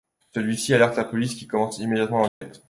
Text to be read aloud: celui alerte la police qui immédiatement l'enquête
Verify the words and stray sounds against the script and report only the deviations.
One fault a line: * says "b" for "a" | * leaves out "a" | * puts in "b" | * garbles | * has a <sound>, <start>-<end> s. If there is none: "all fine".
* puts in "ci"
* puts in "commence"
* has a dropout, 2.3-2.4 s